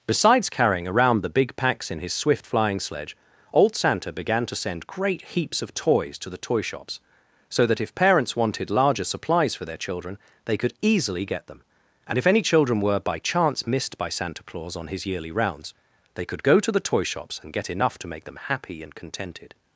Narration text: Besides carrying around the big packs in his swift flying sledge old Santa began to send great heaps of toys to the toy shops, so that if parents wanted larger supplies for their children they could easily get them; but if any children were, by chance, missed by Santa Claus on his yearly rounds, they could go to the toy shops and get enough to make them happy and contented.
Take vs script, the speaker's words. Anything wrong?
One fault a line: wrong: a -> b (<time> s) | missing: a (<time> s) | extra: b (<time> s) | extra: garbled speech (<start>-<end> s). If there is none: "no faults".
wrong: but -> and (12.1 s)